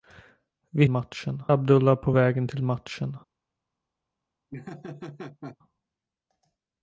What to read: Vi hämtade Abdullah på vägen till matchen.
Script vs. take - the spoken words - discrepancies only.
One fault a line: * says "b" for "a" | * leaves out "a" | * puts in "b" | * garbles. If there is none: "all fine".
* says "matchen" for "hämtade"